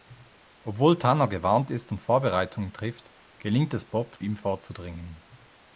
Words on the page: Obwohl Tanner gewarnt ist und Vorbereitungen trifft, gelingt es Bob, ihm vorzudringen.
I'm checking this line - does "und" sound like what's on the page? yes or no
yes